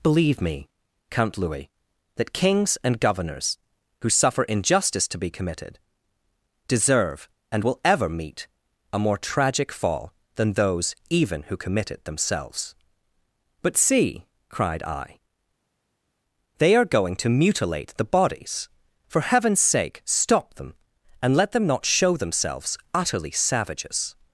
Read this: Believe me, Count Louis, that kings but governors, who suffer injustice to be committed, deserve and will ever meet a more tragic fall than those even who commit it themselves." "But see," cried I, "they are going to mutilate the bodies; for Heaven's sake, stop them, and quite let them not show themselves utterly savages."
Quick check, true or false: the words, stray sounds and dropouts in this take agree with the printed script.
false